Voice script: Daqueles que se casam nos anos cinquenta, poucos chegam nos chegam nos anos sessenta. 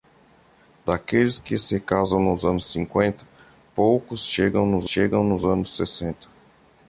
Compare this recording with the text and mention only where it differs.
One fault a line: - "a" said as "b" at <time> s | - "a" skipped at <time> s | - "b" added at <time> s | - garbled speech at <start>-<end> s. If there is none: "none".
none